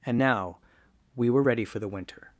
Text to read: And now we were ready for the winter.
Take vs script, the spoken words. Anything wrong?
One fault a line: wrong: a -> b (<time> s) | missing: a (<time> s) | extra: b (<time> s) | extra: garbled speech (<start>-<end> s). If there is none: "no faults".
no faults